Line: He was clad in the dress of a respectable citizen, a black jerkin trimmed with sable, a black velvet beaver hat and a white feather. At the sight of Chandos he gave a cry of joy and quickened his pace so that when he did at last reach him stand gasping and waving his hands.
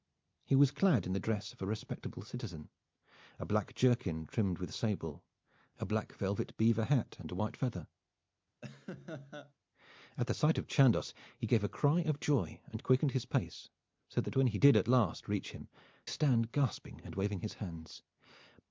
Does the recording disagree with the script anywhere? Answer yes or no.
no